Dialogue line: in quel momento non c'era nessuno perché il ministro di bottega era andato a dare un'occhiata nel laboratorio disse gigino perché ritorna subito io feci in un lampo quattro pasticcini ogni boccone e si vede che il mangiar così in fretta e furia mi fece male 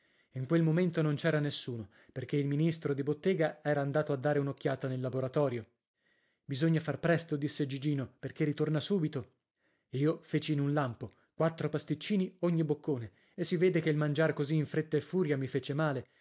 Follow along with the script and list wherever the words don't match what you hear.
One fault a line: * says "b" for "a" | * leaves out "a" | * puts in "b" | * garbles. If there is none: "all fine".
* puts in "bisogna far presto"